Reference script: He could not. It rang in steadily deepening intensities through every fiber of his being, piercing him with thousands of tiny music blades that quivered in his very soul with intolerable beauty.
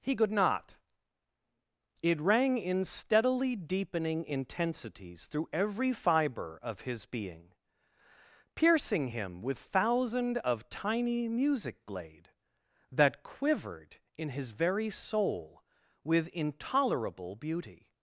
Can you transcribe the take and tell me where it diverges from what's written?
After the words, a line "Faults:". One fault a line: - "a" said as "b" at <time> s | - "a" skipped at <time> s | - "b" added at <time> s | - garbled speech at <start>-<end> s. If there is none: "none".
He could not. It rang in steadily deepening intensities through every fiber of his being, piercing him with thousand of tiny music blade that quivered in his very soul with intolerable beauty.
Faults:
- "thousands" said as "thousand" at 9.6 s
- "blades" said as "blade" at 11.8 s